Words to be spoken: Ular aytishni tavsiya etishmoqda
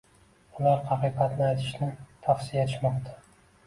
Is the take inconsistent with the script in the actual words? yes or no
yes